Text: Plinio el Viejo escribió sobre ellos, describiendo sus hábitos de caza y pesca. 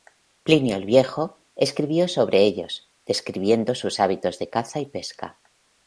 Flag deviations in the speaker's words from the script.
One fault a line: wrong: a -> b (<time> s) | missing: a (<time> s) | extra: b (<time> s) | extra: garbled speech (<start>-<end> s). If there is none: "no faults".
no faults